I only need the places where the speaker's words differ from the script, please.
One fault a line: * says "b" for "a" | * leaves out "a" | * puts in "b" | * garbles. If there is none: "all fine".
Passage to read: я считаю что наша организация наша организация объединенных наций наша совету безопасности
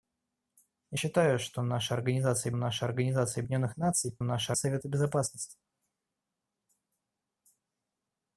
all fine